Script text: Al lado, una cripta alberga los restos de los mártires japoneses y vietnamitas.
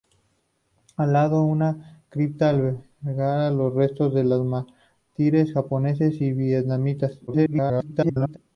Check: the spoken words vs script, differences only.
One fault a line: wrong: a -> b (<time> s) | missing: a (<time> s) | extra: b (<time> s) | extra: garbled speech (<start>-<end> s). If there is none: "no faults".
extra: garbled speech (7.3-8.4 s)